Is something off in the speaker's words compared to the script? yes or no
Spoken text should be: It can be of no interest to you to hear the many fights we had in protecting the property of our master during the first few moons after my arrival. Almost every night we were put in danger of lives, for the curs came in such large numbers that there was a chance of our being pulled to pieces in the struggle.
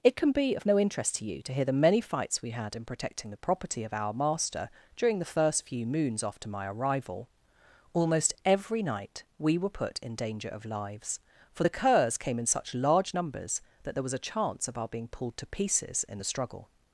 no